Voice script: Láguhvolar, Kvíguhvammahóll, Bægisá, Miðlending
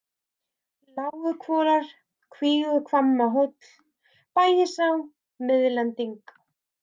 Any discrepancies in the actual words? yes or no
no